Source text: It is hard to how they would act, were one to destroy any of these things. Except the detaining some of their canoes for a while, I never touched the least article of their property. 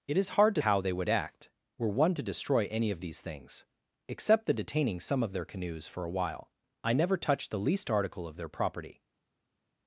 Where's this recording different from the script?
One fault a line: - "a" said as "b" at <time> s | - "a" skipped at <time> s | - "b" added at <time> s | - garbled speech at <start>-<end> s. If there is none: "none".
none